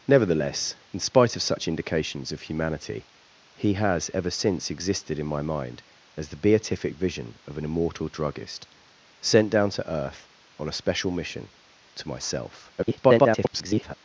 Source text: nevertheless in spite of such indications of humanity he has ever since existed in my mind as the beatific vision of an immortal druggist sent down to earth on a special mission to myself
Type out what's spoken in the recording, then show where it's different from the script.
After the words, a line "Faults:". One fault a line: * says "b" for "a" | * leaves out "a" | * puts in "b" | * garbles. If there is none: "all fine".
nevertheless in spite of such indications of humanity he has ever since existed in my mind as the beatific vision of an immortal druggist sent down to earth on a special mission to myself [garbled]
Faults:
* garbles